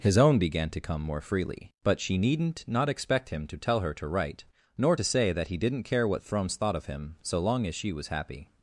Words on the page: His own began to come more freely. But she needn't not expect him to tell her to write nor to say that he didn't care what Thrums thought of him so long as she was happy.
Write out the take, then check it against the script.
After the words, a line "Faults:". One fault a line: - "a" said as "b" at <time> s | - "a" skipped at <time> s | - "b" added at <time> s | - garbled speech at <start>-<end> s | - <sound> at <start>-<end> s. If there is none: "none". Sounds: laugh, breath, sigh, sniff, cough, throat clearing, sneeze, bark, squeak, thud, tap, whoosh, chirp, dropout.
His own began to come more freely. But she needn't not expect him to tell her to write nor to say that he didn't care what Thrums thought of him so long as she was happy.
Faults:
none